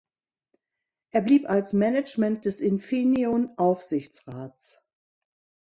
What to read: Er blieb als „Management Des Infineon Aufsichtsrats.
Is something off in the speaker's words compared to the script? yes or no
no